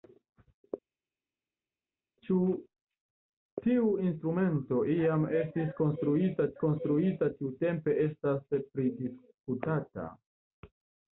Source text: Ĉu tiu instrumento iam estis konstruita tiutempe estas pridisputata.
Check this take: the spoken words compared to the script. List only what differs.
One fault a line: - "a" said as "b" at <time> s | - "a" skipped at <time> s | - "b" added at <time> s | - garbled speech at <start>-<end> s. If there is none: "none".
- "konstruita" added at 6.6 s